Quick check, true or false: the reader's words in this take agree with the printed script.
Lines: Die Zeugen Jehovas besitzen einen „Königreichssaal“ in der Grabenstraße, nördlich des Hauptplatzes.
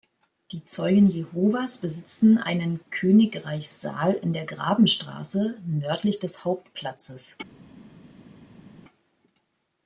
true